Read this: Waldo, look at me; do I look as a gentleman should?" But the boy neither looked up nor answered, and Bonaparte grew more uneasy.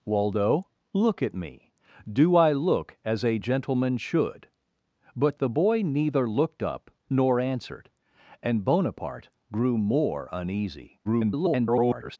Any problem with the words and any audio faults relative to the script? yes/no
yes